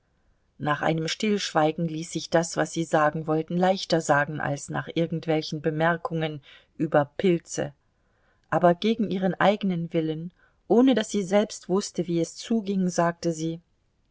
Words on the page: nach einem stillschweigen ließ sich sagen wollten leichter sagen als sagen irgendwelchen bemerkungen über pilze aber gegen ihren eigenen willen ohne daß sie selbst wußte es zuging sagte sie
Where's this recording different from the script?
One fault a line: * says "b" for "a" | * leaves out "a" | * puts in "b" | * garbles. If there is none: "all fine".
* puts in "das was sie"
* says "nach" for "sagen"
* puts in "wie"